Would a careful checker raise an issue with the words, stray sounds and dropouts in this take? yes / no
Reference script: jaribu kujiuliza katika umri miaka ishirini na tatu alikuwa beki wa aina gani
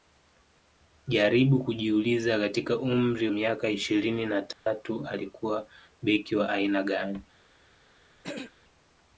yes